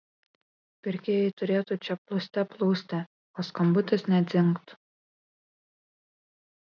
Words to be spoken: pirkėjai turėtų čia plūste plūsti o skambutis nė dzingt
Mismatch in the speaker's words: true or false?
false